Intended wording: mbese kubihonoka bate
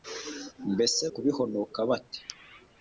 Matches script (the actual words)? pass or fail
pass